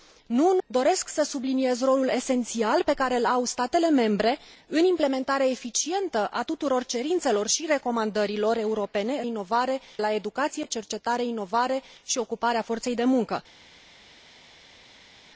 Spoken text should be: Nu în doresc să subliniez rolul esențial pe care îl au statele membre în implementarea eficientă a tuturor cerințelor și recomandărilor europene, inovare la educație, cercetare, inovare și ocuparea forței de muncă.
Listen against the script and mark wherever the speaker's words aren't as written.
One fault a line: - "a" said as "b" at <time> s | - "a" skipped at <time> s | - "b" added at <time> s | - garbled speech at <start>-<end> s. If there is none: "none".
none